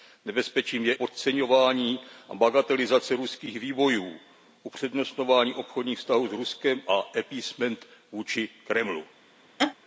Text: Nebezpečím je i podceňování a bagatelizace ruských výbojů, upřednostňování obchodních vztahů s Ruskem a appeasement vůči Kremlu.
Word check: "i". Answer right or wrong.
wrong